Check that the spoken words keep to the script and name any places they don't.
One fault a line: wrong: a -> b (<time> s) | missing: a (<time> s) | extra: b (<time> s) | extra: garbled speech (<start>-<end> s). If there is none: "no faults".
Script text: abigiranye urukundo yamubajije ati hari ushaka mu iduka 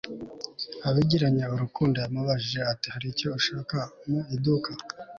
extra: icyo (3.1 s)